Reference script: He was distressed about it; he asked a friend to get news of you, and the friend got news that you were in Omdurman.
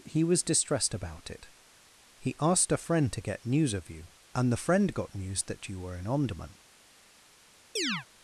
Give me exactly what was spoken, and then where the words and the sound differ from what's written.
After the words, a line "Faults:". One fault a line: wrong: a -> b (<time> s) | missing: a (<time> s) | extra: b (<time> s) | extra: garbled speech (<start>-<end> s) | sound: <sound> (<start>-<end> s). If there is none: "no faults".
He was distressed about it; he asked a friend to get news of you, and the friend got news that you were in Omdurman.
Faults:
sound: chirp (7.8-8.1 s)